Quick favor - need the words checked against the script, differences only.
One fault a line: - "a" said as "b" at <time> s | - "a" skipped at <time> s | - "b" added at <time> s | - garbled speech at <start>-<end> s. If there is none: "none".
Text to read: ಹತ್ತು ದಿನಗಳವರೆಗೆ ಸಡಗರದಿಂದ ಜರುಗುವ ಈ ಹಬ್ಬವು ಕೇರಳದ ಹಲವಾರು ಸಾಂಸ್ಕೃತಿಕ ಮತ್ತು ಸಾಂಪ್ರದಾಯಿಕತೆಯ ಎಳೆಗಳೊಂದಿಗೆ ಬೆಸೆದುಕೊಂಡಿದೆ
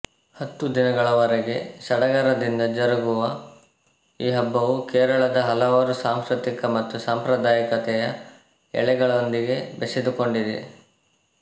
none